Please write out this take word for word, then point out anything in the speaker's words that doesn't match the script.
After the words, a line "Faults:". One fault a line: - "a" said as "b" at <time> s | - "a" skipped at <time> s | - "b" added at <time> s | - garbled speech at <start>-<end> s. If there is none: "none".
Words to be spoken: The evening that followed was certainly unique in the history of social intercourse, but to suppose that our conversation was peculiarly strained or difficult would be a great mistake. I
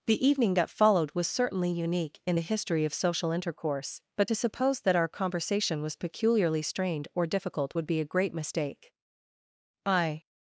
The evening that followed was certainly unique in the history of social intercourse, but to suppose that our conversation was peculiarly strained or difficult would be a great mistake. I
Faults:
none